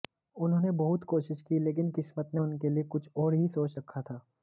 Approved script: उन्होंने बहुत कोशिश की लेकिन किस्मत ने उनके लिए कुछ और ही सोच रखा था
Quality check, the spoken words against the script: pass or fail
pass